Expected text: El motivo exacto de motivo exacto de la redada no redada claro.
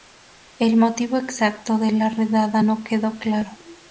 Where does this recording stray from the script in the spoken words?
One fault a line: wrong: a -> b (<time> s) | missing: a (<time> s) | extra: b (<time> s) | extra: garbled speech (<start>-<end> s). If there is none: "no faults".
missing: motivo exacto de (1.9 s)
wrong: redada -> quedó (2.8 s)